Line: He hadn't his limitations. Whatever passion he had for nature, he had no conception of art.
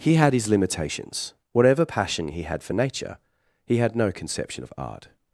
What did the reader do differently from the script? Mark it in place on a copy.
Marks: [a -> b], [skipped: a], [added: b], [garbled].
He [hadn't -> had] his limitations. Whatever passion he had for nature, he had no conception of art.